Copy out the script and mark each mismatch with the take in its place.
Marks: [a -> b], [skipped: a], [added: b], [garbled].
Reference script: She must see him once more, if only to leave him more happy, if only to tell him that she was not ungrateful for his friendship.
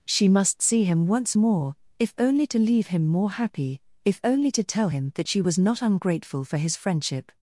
She must see him once more, if only to leave him more happy, if only to tell him that she was not ungrateful for his friendship.